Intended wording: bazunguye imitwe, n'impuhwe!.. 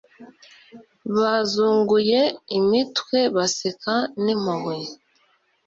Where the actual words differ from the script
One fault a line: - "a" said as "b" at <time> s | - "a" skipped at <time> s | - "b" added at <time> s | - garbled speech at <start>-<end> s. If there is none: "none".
- "baseka" added at 3.4 s